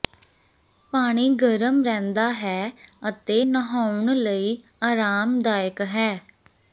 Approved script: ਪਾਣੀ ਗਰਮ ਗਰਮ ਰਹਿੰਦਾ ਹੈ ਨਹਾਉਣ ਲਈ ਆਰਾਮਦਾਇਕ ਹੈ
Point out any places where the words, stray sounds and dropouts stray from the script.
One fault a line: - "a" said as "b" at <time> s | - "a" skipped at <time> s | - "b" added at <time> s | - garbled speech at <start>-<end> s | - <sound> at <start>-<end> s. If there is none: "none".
- "ਗਰਮ" skipped at 1.8 s
- "ਅਤੇ" added at 3.1 s